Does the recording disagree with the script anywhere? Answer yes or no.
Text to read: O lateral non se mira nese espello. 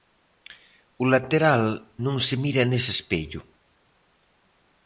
no